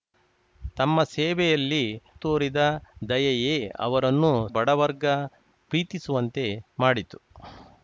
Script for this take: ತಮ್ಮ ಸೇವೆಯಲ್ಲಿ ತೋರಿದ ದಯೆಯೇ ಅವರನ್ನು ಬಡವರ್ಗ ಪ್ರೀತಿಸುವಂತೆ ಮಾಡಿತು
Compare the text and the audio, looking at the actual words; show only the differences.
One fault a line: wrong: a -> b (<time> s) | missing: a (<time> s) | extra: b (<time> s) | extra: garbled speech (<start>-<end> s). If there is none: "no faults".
no faults